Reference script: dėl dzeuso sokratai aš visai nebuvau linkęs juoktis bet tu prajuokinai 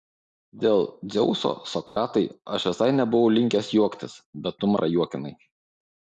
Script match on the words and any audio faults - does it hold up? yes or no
no